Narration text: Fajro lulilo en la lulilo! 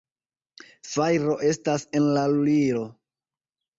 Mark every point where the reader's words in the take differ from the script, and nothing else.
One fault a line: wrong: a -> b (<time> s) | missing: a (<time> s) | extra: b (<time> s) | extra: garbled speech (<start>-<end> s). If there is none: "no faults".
wrong: lulilo -> estas (1.5 s)